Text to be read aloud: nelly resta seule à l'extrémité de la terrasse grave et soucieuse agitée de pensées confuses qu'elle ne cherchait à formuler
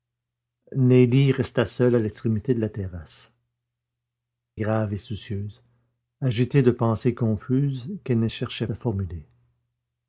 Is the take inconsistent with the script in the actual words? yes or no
no